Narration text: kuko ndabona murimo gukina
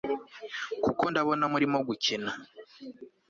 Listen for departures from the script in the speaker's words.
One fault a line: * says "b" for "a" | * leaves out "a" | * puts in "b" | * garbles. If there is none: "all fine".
all fine